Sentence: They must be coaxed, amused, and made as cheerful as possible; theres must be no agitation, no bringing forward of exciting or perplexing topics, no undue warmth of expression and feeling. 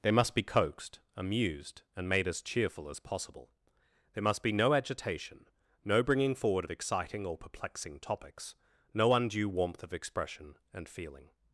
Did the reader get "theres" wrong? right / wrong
wrong